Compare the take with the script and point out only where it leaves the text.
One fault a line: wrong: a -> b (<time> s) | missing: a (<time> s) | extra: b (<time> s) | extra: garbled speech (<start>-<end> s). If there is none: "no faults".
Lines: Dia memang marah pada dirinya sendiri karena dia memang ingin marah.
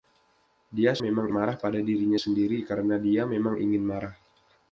no faults